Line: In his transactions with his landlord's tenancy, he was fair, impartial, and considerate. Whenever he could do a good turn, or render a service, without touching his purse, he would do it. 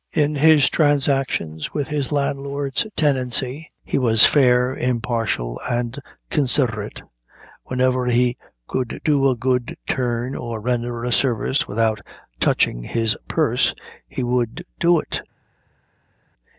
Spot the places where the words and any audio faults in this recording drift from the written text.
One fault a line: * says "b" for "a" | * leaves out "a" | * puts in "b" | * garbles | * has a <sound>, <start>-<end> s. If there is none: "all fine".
all fine